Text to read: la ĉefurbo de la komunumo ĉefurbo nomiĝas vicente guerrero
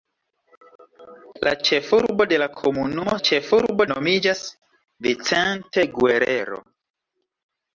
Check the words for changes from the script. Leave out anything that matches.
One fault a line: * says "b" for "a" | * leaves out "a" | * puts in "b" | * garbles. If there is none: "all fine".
all fine